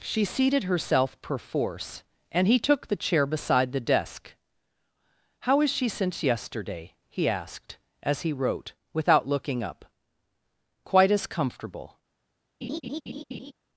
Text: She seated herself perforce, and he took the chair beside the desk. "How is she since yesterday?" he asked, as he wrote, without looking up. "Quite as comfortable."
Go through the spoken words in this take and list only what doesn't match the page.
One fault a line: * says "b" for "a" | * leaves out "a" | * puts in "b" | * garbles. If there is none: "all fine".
all fine